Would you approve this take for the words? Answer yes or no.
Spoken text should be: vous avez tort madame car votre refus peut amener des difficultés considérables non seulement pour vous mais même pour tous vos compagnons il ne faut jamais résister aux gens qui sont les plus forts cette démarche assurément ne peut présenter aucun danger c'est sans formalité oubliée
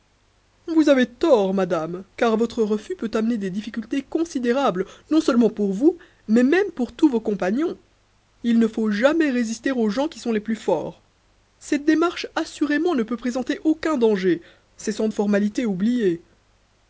yes